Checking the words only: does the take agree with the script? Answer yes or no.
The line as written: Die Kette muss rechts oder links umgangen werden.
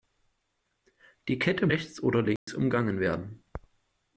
no